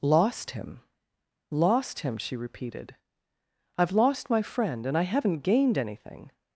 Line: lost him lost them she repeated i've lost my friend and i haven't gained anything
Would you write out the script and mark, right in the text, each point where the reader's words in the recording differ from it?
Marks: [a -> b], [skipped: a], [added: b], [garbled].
lost him lost [them -> him] she repeated i've lost my friend and i haven't gained anything